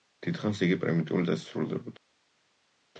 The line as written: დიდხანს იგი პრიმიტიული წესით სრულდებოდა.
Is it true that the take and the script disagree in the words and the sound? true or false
false